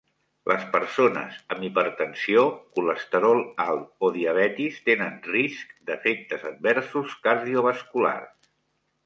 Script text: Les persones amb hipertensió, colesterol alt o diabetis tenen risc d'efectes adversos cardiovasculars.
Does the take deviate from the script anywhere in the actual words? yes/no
no